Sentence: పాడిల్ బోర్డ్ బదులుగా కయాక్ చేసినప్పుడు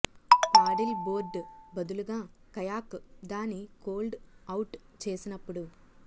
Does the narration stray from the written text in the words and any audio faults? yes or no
yes